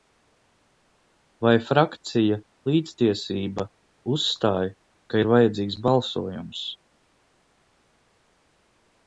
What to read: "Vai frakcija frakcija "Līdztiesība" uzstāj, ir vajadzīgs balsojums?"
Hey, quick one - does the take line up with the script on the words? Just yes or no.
no